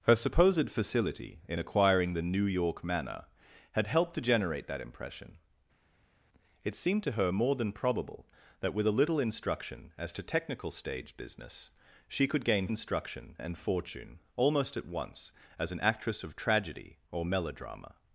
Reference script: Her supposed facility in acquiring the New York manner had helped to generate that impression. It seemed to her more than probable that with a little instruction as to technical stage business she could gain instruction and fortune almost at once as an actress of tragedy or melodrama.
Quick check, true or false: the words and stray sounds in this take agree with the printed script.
true